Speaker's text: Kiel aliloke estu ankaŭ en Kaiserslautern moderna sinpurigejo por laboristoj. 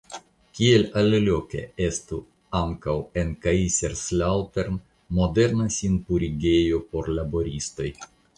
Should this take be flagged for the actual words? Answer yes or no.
no